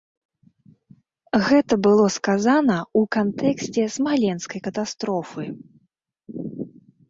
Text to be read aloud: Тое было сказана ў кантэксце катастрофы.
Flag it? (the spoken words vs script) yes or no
yes